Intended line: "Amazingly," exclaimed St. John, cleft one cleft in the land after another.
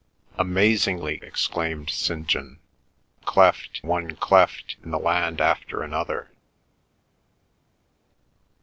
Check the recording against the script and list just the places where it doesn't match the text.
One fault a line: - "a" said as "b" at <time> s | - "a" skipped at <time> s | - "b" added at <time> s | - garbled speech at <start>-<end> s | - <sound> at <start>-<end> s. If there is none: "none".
none